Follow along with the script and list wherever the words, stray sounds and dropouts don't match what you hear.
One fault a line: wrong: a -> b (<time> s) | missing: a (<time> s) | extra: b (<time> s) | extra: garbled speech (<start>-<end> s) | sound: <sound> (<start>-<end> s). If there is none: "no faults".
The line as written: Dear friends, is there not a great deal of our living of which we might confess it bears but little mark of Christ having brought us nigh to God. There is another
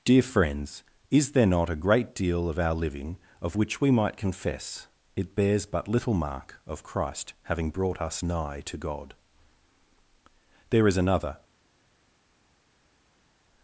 no faults